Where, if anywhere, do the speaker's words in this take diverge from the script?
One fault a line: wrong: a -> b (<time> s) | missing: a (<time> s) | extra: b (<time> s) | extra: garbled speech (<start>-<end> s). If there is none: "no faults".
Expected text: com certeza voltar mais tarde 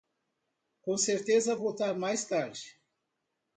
no faults